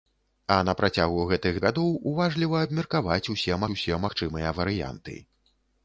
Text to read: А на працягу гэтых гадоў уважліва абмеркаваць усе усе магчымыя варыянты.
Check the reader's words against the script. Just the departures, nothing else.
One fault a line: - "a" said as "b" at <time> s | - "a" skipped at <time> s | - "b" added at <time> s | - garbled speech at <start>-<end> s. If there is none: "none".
none